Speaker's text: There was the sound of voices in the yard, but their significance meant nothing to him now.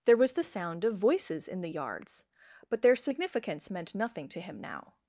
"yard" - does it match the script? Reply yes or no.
no